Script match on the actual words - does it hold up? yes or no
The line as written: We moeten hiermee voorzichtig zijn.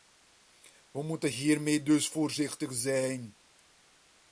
no